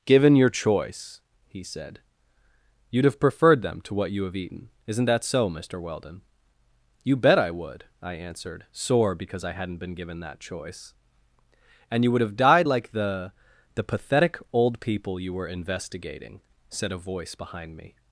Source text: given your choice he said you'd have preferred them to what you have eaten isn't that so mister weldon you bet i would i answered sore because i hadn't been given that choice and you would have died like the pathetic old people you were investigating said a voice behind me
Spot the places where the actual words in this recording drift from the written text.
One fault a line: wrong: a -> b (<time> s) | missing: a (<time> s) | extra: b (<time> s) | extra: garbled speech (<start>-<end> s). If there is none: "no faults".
extra: the (13.7 s)